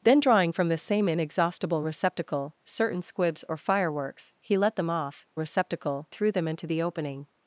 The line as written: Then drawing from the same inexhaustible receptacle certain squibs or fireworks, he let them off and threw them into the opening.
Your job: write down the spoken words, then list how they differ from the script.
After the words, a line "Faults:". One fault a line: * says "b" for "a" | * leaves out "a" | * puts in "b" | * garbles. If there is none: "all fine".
Then drawing from the same inexhaustible receptacle certain squibs or fireworks, he let them off receptacle threw them into the opening.
Faults:
* says "receptacle" for "and"